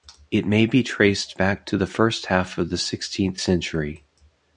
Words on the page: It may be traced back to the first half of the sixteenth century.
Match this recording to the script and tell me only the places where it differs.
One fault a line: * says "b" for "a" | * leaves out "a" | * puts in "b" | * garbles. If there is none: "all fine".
all fine